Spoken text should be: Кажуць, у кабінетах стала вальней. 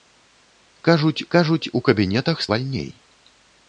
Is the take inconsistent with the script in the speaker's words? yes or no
yes